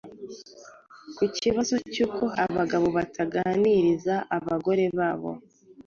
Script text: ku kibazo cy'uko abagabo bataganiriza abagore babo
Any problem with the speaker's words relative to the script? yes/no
no